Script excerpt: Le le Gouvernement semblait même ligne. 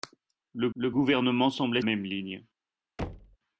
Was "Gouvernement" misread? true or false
false